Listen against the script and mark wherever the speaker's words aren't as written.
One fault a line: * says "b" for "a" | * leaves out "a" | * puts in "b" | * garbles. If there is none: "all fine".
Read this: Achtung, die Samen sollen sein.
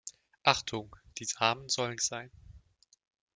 all fine